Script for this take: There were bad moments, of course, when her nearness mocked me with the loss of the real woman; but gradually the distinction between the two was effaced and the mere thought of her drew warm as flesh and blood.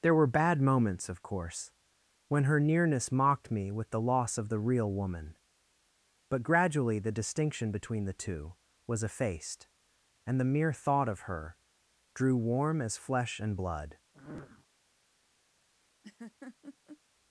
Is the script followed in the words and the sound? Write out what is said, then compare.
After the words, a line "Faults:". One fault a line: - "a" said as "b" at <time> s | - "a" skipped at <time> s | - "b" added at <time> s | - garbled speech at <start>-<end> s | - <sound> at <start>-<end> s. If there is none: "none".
There were bad moments, of course, when her nearness mocked me with the loss of the real woman; but gradually the distinction between the two was effaced and the mere thought of her drew warm as flesh and blood.
Faults:
- sniff at 14.1-14.7 s
- laugh at 16.0-17.0 s